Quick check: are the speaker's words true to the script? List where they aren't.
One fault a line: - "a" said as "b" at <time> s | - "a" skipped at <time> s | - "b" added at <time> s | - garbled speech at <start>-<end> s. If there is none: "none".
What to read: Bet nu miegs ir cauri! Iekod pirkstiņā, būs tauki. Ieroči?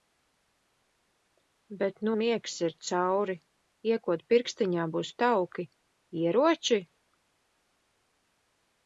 none